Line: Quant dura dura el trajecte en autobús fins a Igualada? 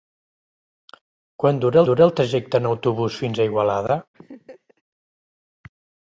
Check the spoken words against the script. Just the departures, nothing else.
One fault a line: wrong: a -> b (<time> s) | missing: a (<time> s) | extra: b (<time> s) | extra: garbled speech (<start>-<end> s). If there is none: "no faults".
no faults